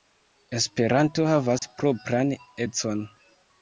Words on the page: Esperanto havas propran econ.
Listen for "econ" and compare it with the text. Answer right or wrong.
right